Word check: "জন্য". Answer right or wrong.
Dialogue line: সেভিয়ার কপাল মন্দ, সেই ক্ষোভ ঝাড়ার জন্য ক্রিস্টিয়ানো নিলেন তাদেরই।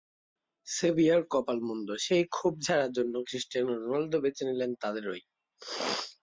right